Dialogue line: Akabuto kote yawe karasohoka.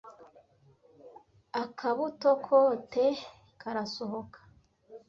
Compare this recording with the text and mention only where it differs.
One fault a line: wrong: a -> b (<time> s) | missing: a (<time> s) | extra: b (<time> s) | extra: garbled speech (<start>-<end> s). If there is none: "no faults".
missing: yawe (3.0 s)